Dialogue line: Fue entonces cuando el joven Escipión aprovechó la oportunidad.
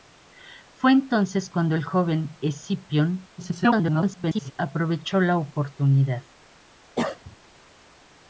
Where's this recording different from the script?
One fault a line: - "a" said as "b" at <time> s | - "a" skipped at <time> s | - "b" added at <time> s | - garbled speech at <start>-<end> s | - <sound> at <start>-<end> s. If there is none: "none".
- garbled speech at 3.4-4.5 s
- cough at 7.0-7.4 s